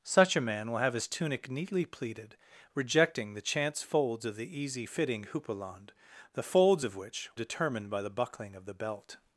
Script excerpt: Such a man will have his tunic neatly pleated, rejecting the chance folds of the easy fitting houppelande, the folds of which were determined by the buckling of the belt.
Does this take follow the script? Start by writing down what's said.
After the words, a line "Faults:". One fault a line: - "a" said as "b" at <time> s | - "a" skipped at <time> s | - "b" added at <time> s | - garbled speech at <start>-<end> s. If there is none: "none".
Such a man will have his tunic neatly pleated, rejecting the chance folds of the easy fitting houppelande, the folds of which determined by the buckling of the belt.
Faults:
- "were" skipped at 7.3 s